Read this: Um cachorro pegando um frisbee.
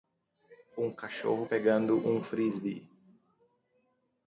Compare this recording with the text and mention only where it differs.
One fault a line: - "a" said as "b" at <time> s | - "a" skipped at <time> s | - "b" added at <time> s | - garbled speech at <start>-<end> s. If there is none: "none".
none